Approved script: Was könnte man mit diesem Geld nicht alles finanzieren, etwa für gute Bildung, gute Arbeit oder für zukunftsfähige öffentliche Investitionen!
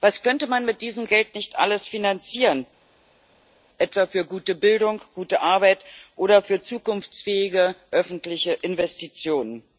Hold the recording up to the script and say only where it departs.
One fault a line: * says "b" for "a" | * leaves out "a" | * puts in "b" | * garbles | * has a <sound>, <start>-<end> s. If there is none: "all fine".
all fine